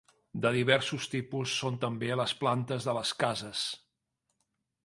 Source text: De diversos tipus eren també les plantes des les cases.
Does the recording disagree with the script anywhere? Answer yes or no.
yes